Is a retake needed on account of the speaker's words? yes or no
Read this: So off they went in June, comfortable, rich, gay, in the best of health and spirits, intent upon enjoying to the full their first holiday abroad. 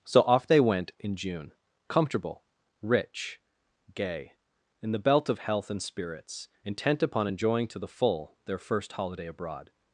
yes